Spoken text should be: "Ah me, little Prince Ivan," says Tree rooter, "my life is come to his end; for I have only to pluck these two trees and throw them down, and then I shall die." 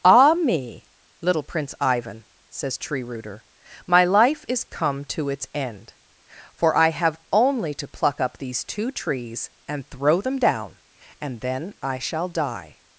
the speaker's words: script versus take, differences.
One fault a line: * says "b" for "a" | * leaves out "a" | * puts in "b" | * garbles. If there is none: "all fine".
* says "its" for "his"
* puts in "up"